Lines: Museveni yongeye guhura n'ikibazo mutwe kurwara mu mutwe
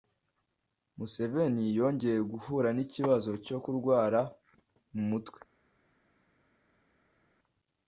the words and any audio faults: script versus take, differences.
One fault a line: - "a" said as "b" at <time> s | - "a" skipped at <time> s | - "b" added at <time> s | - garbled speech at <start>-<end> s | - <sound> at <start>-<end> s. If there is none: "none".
- "mutwe" said as "cyo" at 3.5 s